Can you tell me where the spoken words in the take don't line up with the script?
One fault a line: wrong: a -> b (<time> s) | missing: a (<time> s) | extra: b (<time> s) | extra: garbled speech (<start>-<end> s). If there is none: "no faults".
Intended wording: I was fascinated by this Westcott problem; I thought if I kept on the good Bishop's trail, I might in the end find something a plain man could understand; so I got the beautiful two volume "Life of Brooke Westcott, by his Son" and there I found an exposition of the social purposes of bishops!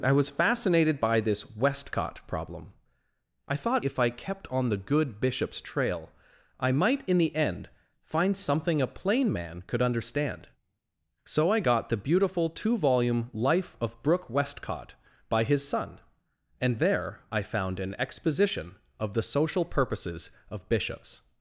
no faults